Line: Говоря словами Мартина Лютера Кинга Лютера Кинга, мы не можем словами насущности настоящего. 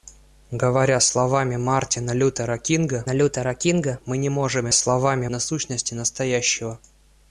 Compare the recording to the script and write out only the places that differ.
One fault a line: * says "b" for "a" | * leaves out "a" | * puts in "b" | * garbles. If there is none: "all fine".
all fine